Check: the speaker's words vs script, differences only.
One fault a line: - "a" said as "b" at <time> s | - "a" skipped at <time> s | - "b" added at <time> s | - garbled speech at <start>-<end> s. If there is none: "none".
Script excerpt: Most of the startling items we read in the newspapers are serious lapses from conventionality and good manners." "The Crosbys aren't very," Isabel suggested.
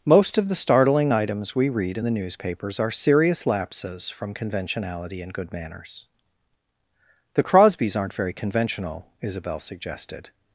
- "conventional" added at 8.3 s